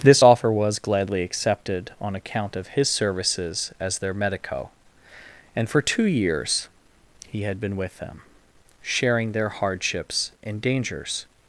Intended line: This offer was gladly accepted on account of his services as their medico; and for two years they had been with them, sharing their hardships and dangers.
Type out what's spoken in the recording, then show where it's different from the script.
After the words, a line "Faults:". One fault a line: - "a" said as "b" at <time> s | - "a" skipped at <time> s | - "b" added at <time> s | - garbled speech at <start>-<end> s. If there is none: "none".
This offer was gladly accepted on account of his services as their medico; and for two years he had been with them, sharing their hardships and dangers.
Faults:
- "they" said as "he" at 7.3 s